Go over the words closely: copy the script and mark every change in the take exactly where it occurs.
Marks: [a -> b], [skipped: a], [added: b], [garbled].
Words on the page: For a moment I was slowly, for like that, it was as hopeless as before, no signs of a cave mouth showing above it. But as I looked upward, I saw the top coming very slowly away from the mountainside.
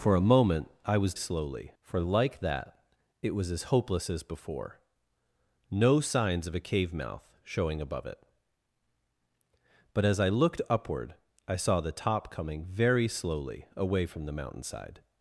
For a moment I was slowly, for like that, it was as hopeless as before, no signs of a cave mouth showing above it. But as I looked upward, I saw the top coming very slowly away from the mountainside.